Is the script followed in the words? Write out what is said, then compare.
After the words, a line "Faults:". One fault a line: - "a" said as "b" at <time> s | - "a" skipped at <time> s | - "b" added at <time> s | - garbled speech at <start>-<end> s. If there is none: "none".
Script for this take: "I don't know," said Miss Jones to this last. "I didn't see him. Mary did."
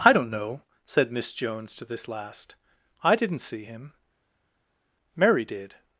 "I don't know," said Miss Jones to this last. "I didn't see him. Mary did."
Faults:
none